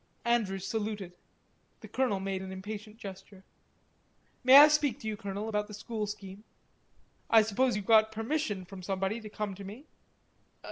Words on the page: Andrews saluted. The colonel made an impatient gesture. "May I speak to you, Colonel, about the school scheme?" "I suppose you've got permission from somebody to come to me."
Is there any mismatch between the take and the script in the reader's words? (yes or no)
no